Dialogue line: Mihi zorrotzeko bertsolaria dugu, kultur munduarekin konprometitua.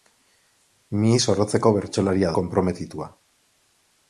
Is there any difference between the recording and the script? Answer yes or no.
yes